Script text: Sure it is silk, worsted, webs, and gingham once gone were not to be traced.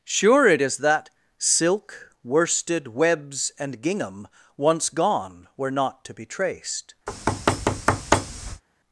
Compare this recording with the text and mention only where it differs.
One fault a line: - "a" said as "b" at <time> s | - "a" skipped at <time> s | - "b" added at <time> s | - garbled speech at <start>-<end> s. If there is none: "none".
- "that" added at 0.8 s